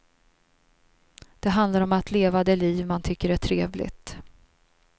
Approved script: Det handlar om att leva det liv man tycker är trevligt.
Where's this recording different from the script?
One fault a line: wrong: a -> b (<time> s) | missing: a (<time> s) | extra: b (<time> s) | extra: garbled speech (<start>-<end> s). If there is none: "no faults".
no faults